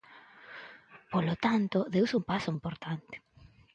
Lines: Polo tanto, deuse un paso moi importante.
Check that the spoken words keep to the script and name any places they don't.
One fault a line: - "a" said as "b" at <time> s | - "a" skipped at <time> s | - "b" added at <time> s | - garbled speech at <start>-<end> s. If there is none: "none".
- "moi" skipped at 2.5 s